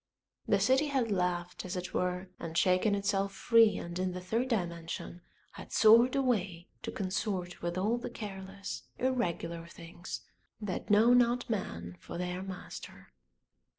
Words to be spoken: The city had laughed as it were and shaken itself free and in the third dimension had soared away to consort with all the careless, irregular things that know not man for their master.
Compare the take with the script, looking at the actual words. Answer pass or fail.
pass